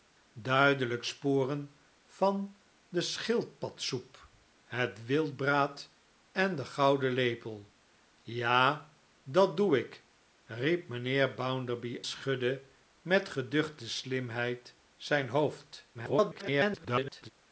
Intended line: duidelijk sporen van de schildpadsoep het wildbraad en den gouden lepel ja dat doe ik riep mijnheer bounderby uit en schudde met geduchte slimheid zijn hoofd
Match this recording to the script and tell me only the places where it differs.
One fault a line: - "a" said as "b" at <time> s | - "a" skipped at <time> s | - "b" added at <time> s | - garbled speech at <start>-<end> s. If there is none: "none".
- "uit en" skipped at 12.0 s
- garbled speech at 15.9-17.3 s